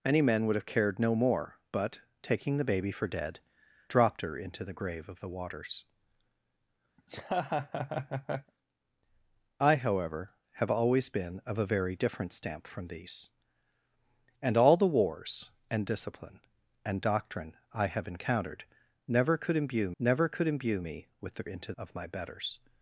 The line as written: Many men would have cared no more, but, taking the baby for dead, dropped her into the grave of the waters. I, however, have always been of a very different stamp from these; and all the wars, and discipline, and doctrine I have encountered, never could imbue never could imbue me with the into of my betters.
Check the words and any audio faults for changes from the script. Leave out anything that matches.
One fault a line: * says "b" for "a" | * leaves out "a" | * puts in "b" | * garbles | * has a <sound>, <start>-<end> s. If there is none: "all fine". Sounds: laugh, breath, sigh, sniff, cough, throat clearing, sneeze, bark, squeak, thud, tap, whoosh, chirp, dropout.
* has a laugh, 7.0-8.5 s